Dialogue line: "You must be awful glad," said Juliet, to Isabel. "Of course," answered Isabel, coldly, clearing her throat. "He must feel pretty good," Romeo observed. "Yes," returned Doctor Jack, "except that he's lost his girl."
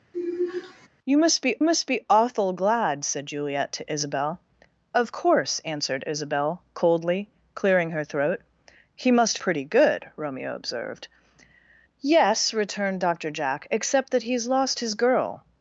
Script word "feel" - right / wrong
wrong